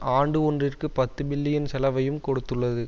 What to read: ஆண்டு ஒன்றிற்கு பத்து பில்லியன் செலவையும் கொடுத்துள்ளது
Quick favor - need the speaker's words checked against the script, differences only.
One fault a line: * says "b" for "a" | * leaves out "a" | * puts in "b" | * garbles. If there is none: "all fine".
all fine